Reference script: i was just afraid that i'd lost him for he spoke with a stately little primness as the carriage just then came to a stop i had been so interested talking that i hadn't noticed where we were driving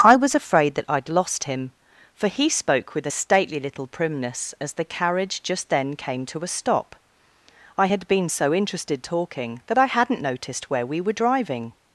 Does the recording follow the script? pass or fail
fail